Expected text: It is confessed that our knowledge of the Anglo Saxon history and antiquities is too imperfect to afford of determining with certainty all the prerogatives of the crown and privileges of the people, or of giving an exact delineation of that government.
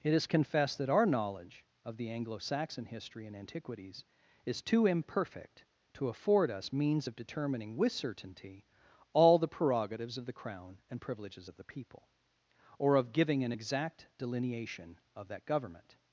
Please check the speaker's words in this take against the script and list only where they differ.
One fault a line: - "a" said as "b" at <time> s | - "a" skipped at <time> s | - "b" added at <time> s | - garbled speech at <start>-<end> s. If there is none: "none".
- "us means" added at 6.5 s